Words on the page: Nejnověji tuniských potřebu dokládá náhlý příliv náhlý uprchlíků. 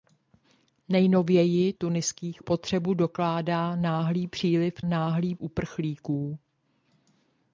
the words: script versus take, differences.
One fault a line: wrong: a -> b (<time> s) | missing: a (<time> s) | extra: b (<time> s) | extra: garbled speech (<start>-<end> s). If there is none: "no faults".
no faults